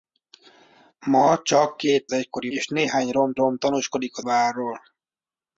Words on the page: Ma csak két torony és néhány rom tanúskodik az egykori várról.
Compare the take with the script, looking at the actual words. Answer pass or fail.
fail